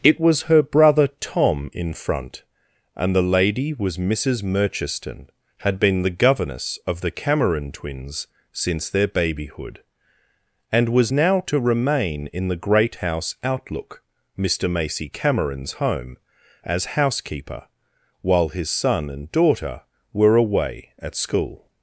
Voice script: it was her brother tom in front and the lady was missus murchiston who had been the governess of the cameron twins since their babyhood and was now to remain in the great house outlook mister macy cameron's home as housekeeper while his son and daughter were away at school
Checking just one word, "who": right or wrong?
wrong